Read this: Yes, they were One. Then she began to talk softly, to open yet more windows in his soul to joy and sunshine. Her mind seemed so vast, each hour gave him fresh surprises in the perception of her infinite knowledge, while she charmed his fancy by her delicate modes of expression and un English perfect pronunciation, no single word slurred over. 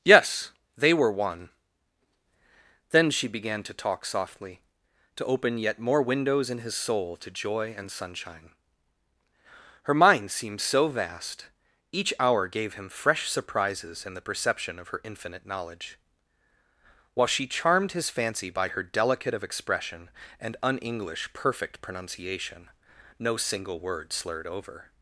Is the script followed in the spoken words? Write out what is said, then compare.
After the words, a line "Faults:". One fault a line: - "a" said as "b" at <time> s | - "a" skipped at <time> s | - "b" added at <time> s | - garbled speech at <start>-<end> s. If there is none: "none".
Yes, they were One. Then she began to talk softly, to open yet more windows in his soul to joy and sunshine. Her mind seemed so vast, each hour gave him fresh surprises in the perception of her infinite knowledge, while she charmed his fancy by her delicate of expression and un English perfect pronunciation, no single word slurred over.
Faults:
- "modes" skipped at 19.3 s